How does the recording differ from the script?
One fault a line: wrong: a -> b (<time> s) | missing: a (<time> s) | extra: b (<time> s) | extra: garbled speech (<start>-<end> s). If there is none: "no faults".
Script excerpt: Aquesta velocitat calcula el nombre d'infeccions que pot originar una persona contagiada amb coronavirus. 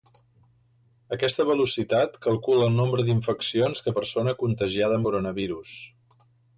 missing: pot originar una (4.0 s)
missing: amb (5.0 s)